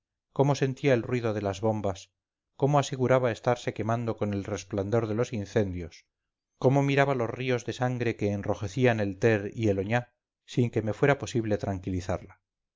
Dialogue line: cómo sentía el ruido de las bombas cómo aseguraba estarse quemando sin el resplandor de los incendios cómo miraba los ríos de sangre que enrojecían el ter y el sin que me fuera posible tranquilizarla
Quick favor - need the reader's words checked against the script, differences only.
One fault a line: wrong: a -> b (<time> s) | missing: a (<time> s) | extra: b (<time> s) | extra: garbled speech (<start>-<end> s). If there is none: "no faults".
wrong: sin -> con (4.2 s)
extra: oñá (9.8 s)